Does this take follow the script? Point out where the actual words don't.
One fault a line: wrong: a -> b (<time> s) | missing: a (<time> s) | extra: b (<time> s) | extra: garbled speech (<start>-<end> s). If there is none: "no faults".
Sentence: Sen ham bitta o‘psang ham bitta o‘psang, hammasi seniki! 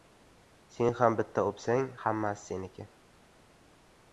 missing: ham bitta o‘psang (1.9 s)